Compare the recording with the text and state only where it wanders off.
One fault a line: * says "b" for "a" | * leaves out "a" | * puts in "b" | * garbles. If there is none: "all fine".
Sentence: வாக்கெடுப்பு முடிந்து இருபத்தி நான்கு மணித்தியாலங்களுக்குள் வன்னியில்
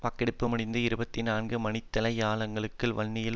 all fine